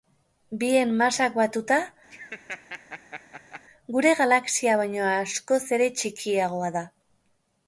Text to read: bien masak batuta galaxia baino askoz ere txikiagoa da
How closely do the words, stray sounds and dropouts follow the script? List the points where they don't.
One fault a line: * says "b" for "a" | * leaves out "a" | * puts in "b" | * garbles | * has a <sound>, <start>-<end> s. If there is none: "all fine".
* has a laugh, 2.1-3.6 s
* puts in "gure"